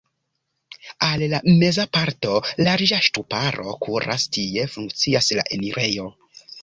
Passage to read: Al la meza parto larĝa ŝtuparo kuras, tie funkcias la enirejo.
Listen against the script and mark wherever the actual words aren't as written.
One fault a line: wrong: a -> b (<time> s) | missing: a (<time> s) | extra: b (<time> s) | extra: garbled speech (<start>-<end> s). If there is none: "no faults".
no faults